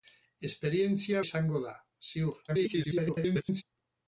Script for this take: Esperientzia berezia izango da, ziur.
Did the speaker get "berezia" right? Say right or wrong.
wrong